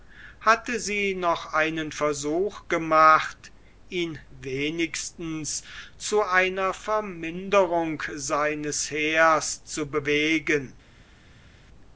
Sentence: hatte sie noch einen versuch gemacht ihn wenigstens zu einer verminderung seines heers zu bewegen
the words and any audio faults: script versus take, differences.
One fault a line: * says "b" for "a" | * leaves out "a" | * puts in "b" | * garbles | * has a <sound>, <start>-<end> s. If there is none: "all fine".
all fine